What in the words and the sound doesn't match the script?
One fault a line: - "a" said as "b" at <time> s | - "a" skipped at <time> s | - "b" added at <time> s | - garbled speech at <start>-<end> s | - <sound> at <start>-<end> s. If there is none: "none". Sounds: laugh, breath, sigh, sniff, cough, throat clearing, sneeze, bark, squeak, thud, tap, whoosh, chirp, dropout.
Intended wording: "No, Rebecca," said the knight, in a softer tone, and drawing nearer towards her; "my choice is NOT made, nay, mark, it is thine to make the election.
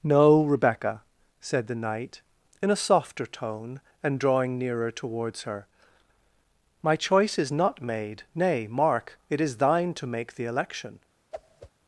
- whoosh at 11.3-11.7 s